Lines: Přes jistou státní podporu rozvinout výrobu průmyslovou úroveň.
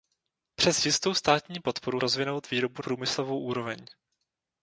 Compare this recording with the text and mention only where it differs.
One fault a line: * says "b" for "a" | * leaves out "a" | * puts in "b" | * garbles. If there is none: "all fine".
all fine